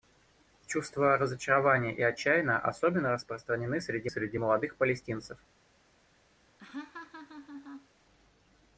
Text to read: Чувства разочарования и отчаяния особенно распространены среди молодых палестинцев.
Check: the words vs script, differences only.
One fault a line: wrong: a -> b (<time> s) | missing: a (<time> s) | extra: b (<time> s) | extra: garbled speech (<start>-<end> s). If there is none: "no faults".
extra: среди (4.1 s)